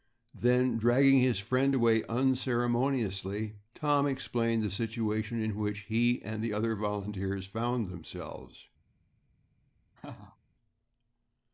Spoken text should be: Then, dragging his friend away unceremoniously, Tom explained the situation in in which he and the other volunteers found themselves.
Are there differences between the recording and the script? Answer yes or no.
yes